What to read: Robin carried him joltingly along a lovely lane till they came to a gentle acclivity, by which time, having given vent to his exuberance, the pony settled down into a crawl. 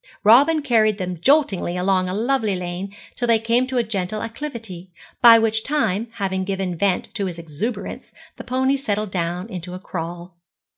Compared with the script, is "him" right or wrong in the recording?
wrong